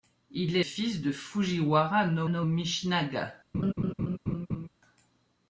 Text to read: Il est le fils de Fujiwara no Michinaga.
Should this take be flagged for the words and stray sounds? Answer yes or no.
yes